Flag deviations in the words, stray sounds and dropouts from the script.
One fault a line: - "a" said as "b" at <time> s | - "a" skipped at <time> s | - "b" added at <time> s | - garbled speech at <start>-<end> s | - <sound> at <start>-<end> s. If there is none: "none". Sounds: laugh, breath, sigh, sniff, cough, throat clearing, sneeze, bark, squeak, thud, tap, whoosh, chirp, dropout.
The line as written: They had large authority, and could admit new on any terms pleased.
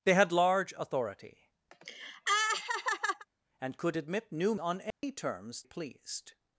- laugh at 1.7-3.3 s
- dropout at 4.9-5.0 s